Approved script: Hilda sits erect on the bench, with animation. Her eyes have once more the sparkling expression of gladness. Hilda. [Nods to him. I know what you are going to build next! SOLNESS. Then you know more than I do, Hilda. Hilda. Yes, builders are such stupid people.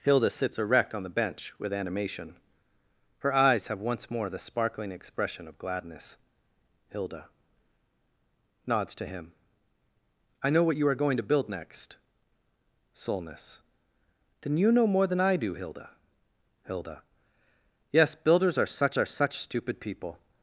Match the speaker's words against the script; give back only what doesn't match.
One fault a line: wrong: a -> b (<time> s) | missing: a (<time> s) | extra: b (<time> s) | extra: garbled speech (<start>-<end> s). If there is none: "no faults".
extra: are such (19.0 s)